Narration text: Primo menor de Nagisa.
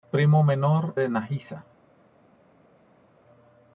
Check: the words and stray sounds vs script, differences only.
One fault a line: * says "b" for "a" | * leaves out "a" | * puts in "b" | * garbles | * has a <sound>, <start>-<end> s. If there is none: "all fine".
all fine